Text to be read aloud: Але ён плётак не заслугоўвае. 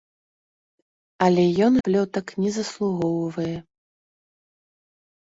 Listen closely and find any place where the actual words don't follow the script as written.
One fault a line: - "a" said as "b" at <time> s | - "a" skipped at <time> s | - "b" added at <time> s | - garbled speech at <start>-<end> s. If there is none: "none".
none